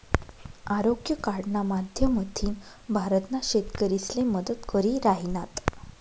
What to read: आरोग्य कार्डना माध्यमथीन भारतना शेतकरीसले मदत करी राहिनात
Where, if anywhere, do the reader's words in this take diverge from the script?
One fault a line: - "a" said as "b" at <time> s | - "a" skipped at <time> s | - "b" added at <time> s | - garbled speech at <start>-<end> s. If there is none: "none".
none